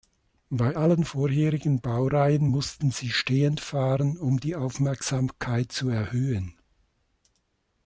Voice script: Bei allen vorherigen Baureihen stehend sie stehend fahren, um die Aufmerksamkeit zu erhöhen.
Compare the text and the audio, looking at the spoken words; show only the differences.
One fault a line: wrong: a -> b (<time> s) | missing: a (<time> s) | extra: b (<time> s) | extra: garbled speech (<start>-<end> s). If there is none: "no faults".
wrong: stehend -> mussten (2.4 s)